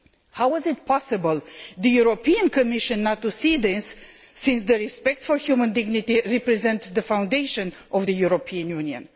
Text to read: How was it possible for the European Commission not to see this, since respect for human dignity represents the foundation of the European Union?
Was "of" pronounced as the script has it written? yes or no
yes